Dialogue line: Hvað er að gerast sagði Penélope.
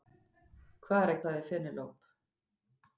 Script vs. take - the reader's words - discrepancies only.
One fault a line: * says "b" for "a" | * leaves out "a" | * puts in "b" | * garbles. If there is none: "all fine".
* leaves out "gerast"